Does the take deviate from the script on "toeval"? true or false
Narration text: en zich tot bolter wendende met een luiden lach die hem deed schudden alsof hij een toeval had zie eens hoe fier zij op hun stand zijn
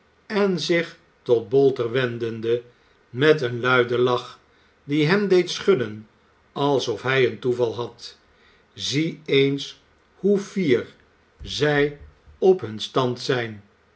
false